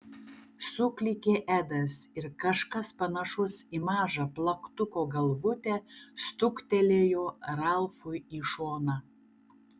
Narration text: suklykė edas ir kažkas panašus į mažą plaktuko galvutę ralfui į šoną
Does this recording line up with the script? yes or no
no